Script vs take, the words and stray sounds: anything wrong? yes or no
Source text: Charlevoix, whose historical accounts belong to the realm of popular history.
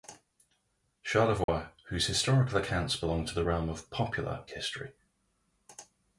yes